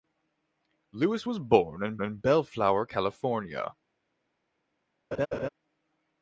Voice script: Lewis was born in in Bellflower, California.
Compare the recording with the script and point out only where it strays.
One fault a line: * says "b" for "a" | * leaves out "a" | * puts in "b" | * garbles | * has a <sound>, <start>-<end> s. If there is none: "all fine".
* has a laugh, 5.1-5.5 s